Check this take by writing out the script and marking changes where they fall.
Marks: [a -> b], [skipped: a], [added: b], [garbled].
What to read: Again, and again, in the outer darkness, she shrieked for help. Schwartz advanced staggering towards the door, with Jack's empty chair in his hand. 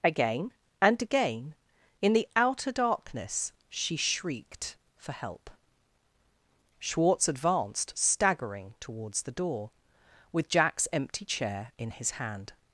Again, and again, in the outer darkness, she shrieked for help. Schwartz advanced staggering towards the door, with Jack's empty chair in his hand.